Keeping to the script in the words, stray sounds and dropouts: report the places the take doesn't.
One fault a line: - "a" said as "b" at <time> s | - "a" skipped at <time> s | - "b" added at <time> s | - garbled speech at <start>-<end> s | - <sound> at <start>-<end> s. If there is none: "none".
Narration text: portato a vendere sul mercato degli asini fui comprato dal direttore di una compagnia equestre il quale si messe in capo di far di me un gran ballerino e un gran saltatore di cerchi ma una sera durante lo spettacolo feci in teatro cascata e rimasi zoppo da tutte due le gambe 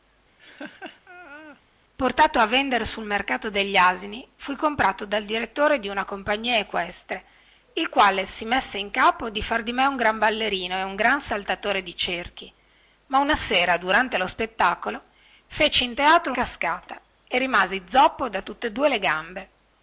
- laugh at 0.4-1.6 s